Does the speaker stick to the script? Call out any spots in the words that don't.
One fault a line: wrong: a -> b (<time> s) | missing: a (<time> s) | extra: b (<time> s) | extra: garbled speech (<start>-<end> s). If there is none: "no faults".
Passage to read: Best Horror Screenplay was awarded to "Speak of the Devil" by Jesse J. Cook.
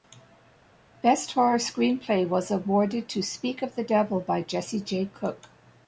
no faults